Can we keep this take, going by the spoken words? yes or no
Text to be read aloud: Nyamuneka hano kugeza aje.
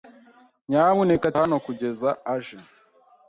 yes